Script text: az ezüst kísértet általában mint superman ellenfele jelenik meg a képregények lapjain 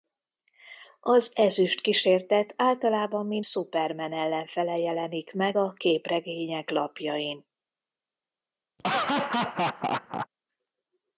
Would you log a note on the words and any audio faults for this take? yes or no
yes